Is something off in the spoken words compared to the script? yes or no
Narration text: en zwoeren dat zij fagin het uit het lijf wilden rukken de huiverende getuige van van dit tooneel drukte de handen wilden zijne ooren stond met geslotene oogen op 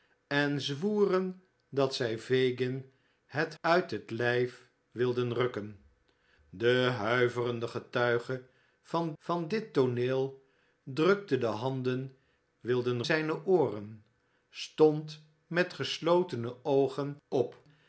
no